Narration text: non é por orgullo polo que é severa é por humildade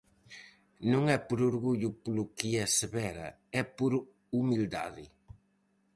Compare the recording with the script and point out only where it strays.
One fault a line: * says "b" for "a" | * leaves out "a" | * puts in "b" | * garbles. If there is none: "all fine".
all fine